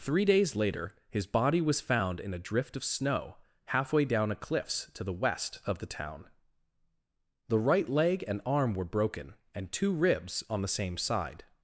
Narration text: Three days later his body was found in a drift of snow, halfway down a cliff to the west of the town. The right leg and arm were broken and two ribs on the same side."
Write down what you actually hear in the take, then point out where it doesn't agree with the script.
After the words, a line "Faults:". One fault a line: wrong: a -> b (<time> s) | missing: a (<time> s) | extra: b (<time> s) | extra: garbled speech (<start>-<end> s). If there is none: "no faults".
Three days later his body was found in a drift of snow, halfway down a cliffs to the west of the town. The right leg and arm were broken and two ribs on the same side."
Faults:
wrong: cliff -> cliffs (4.3 s)